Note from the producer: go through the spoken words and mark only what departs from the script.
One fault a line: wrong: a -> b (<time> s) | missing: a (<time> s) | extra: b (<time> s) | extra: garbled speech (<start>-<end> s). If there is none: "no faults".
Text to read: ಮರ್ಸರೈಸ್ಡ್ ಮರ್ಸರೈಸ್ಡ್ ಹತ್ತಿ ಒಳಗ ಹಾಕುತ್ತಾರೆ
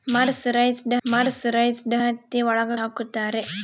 no faults